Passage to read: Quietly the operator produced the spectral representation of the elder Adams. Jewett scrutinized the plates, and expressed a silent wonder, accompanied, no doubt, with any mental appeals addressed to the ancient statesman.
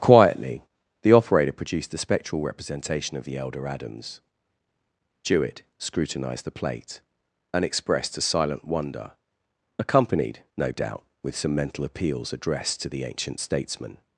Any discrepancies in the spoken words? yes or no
yes